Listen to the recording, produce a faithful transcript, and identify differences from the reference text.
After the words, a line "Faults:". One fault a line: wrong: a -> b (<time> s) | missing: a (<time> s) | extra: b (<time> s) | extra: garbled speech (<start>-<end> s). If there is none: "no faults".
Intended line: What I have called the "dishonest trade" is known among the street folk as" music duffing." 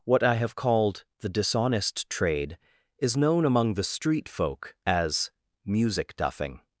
What I have called the "dishonest trade" is known among the street folk as" music duffing."
Faults:
no faults